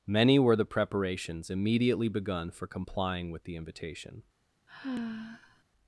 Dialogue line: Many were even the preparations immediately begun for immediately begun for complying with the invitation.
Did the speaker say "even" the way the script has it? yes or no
no